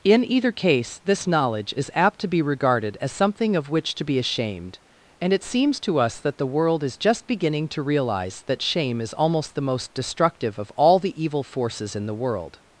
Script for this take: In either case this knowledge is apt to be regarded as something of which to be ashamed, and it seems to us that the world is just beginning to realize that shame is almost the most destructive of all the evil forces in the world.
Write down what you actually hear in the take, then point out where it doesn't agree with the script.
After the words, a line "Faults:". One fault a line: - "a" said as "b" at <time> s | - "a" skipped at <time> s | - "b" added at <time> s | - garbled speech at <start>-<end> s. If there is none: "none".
In either case this knowledge is apt to be regarded as something of which to be ashamed, and it seems to us that the world is just beginning to realize that shame is almost the most destructive of all the evil forces in the world.
Faults:
none